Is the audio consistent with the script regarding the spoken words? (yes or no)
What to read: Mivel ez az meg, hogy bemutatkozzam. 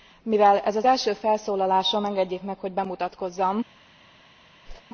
no